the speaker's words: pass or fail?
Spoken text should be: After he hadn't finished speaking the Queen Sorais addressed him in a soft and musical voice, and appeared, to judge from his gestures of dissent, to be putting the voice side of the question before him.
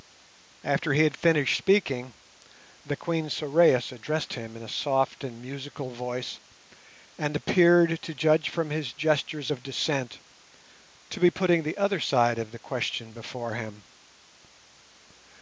fail